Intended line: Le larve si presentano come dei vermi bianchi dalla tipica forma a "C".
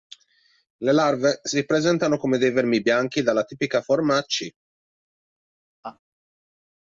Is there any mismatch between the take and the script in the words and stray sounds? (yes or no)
yes